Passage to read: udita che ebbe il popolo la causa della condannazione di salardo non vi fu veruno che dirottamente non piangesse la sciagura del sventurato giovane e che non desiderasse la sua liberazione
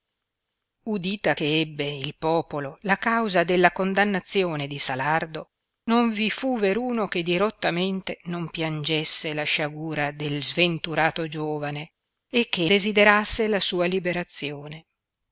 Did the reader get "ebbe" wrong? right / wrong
right